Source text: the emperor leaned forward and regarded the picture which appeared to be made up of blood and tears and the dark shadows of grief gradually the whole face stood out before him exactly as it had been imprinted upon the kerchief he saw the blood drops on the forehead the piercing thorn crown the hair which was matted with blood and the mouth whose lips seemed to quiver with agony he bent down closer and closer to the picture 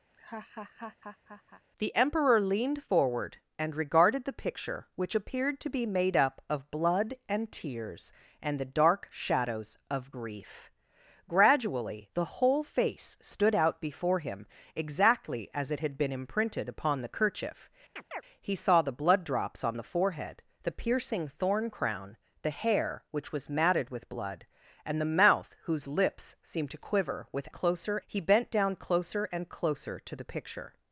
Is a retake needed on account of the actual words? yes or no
yes